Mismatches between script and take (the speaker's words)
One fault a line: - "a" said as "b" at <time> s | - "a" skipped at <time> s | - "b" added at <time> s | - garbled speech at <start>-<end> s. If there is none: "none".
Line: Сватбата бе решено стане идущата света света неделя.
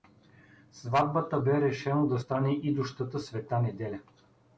- "да" added at 2.1 s
- "света" skipped at 3.6 s